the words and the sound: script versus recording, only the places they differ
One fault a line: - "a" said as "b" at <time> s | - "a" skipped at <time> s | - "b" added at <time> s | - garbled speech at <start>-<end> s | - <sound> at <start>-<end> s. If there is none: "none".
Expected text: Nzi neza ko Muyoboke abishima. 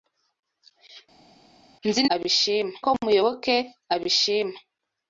- "neza" said as "abishima" at 2.1 s